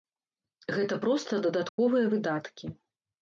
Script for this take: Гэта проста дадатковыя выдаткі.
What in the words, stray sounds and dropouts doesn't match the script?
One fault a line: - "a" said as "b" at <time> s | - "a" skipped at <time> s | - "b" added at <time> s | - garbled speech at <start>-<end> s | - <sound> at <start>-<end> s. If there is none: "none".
- dropout at 1.7-1.8 s